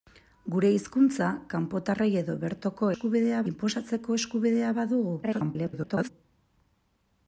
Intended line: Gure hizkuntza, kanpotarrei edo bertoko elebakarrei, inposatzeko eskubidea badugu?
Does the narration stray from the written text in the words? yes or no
yes